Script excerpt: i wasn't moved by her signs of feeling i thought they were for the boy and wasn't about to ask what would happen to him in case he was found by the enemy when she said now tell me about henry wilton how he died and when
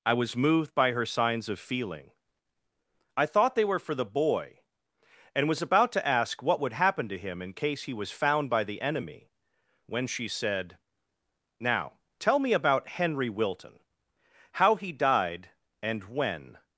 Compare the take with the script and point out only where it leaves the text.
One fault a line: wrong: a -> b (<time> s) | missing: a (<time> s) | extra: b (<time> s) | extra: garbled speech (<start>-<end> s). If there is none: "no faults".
wrong: wasn't -> was (0.1 s)
wrong: wasn't -> was (5.5 s)